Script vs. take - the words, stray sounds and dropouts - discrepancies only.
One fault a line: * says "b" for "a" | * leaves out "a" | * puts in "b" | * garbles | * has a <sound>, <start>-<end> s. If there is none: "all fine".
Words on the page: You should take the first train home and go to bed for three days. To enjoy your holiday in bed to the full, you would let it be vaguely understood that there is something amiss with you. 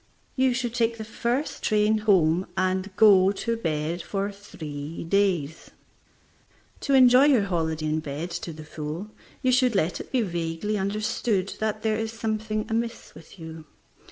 * says "should" for "would"